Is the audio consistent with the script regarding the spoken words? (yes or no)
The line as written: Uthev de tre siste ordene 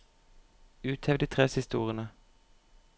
yes